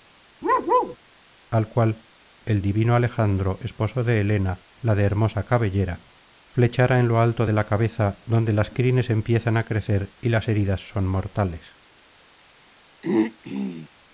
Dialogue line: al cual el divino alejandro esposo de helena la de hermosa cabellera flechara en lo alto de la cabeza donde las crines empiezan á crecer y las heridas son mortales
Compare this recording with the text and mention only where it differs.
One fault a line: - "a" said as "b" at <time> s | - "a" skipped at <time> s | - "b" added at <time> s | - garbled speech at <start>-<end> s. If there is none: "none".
none